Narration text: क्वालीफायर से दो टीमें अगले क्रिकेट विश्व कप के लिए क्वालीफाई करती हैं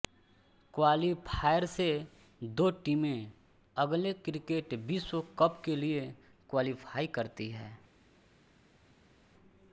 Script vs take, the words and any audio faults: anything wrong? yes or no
no